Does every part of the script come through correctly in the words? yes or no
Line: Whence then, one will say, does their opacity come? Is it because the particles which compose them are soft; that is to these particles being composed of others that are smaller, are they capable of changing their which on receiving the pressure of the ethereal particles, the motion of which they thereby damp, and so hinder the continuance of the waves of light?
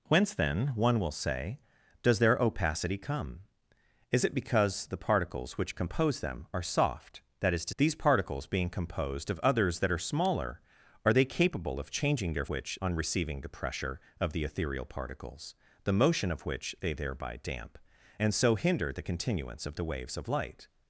yes